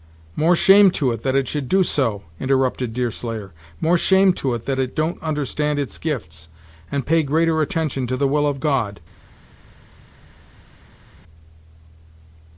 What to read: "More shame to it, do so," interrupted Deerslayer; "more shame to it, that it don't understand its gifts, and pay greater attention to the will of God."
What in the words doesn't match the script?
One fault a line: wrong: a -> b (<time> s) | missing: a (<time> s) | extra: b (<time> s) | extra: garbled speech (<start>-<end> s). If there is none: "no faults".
extra: that it should (1.2 s)